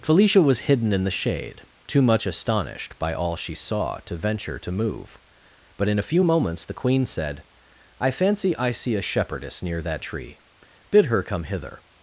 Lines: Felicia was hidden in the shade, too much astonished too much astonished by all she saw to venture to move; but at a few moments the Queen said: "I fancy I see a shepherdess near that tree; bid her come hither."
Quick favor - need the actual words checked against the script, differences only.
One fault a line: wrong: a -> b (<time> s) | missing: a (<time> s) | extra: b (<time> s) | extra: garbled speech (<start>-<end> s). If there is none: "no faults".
missing: too much astonished (3.0 s)
wrong: at -> in (5.9 s)